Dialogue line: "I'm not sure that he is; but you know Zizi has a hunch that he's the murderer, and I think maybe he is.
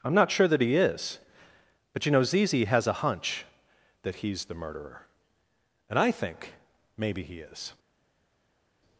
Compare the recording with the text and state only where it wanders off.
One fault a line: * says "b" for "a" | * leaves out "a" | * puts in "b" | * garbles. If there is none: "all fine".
all fine